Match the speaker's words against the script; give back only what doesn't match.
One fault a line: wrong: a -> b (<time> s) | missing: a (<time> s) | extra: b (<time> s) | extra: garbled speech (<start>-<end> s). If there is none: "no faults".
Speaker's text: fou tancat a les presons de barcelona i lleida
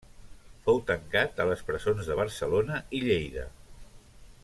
no faults